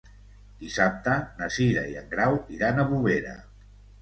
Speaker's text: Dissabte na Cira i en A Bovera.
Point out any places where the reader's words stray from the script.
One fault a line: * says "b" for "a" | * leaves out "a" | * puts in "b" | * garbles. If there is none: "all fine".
* puts in "Grau iran"